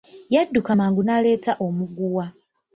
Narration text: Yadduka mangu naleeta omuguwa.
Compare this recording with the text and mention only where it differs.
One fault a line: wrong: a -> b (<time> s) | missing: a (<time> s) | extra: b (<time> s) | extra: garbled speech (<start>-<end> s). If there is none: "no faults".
no faults